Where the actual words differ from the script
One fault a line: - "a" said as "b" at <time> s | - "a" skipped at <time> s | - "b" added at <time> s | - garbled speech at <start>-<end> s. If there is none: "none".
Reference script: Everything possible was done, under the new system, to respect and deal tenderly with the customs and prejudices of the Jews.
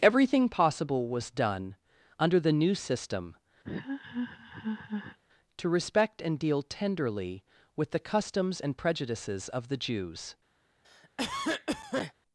none